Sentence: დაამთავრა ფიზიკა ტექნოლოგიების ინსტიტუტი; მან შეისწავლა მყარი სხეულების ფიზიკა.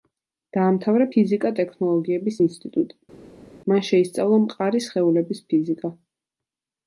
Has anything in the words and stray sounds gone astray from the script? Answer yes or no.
no